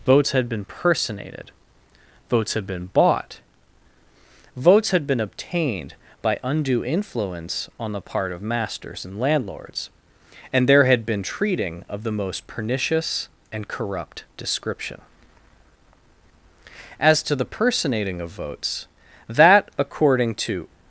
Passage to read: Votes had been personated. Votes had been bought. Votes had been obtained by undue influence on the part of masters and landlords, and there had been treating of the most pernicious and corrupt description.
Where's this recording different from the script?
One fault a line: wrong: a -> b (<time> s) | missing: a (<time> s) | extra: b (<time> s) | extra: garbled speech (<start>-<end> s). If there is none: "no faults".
extra: As to the personating of votes that according to (17.0 s)